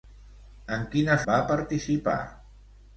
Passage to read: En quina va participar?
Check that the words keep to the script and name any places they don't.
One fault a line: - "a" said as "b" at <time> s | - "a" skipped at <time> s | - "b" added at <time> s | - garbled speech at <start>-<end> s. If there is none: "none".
none